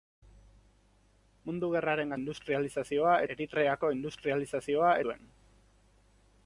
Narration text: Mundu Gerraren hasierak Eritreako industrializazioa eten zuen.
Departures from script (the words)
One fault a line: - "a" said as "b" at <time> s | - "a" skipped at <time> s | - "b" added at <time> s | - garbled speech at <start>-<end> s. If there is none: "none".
- "hasierak" said as "industrializazioa" at 2.2 s
- "eten" skipped at 4.9 s